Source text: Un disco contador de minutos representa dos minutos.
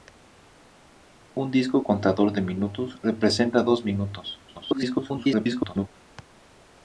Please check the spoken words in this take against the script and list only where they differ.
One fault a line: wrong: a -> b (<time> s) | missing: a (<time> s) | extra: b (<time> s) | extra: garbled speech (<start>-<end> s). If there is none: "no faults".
extra: garbled speech (4.5-5.9 s)